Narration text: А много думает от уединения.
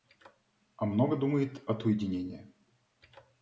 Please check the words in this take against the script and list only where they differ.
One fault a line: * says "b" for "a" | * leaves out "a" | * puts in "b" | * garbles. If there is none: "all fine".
all fine